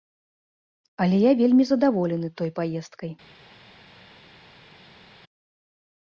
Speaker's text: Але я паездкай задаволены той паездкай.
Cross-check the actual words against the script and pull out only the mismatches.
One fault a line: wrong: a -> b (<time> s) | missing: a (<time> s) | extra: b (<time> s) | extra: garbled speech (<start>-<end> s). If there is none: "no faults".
wrong: паездкай -> вельмі (1.4 s)